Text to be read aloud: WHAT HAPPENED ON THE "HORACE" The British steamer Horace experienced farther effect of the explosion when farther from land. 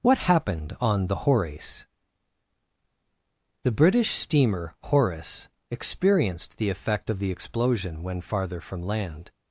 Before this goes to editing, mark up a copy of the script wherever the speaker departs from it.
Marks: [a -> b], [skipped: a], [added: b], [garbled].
WHAT HAPPENED ON THE "HORACE" The British steamer Horace experienced [farther -> the] effect of the explosion when farther from land.